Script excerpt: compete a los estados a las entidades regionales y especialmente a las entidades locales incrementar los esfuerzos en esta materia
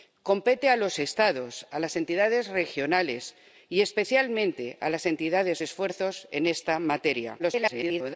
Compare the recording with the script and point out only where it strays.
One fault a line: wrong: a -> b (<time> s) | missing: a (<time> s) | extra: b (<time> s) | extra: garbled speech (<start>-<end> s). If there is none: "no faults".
missing: locales incrementar los (5.6 s)
extra: garbled speech (7.4-8.1 s)